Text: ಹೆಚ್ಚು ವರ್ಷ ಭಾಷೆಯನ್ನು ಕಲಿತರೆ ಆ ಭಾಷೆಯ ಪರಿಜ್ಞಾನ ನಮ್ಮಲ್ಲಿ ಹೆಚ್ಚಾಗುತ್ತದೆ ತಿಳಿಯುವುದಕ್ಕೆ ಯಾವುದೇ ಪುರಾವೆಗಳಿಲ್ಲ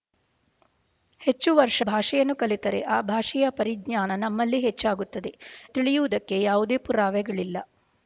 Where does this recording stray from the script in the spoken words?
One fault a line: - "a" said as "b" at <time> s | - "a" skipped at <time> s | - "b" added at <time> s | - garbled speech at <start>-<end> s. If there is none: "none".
none